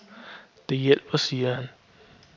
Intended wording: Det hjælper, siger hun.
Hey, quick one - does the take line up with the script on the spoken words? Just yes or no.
no